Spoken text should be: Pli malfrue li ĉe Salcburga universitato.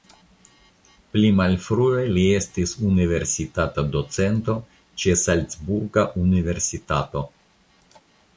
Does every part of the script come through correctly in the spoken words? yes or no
no